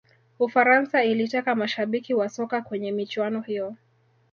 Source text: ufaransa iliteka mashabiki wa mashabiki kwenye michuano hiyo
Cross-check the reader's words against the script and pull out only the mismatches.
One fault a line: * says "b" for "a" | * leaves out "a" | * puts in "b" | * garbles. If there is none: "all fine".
* says "soka" for "mashabiki"